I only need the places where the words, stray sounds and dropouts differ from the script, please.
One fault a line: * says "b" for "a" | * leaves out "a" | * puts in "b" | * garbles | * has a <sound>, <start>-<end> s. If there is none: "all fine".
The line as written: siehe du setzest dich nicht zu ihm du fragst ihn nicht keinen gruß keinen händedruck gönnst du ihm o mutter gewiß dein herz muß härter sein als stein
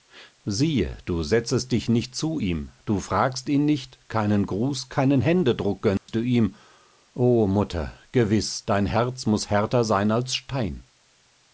* has a dropout, 6.0-6.1 s